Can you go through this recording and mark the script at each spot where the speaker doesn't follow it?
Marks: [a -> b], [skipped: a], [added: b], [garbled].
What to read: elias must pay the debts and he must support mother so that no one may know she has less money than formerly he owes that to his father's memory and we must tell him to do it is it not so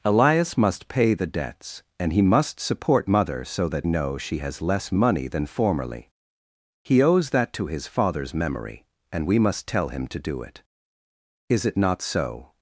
elias must pay the debts and he must support mother so that [skipped: no one may] know she has less money than formerly he owes that to his father's memory and we must tell him to do it is it not so